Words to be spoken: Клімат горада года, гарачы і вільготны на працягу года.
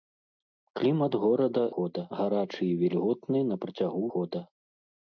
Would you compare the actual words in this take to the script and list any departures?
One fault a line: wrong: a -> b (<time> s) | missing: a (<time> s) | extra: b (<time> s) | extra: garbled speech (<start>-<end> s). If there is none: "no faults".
no faults